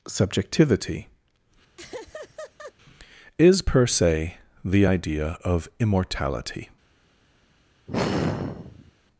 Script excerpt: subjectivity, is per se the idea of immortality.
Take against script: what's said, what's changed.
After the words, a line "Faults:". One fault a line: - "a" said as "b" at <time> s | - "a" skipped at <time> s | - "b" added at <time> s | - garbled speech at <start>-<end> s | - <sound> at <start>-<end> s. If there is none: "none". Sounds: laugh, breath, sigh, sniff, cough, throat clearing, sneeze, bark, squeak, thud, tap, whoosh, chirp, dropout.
subjectivity, is per se the idea of immortality.
Faults:
- laugh at 1.8-2.7 s
- sigh at 7.9-8.9 s